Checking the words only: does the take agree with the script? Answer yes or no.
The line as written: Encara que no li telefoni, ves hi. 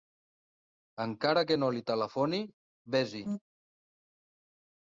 yes